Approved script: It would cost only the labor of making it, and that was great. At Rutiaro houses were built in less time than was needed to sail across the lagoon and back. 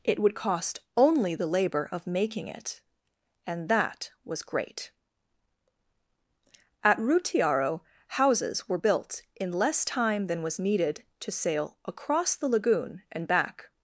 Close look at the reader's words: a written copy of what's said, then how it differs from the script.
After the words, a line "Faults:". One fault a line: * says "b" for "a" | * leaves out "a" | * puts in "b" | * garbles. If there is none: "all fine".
It would cost only the labor of making it, and that was great. At Rutiaro houses were built in less time than was needed to sail across the lagoon and back.
Faults:
all fine